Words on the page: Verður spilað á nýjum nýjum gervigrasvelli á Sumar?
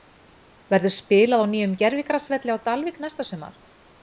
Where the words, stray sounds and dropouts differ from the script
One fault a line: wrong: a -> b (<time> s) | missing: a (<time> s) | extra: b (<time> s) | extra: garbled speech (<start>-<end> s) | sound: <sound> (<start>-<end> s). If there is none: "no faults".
missing: nýjum (1.8 s)
extra: Dalvík næsta (2.7 s)